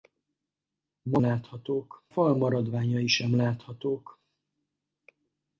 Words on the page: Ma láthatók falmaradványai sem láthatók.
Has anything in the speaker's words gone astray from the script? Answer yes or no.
no